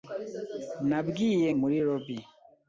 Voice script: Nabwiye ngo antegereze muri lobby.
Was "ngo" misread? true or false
true